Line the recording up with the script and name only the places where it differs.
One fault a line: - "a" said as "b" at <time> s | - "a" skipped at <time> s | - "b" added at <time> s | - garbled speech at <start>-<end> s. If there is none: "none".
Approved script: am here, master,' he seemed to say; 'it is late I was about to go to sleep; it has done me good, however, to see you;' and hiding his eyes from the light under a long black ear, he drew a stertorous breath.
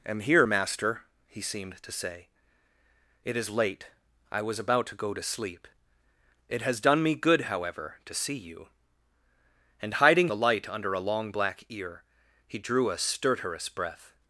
- "his eyes from" skipped at 10.3 s